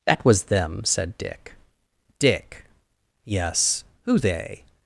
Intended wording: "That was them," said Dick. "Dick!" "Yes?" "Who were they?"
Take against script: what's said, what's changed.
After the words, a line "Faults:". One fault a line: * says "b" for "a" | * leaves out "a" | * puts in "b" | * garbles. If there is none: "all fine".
"That was them," said Dick. "Dick!" "Yes?" "Who they?"
Faults:
* leaves out "were"